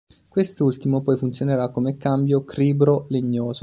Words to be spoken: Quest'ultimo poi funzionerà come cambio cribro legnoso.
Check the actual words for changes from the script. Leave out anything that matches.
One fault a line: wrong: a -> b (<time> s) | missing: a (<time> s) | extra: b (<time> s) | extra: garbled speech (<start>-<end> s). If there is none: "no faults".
no faults